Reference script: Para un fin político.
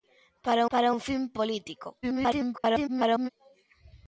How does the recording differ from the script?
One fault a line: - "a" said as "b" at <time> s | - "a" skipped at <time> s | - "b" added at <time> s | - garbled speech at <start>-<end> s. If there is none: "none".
- "para" added at 0.7 s
- garbled speech at 2.0-3.3 s